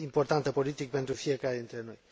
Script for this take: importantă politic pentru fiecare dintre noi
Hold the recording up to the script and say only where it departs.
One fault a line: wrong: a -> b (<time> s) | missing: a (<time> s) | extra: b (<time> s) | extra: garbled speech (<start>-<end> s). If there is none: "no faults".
no faults